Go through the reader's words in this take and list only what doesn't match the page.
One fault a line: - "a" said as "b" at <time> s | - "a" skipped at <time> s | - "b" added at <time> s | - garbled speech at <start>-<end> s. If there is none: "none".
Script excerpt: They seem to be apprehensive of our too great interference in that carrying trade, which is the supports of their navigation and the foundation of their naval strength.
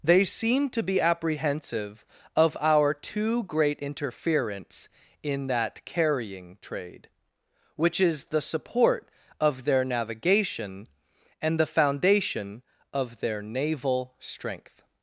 - "supports" said as "support" at 8.4 s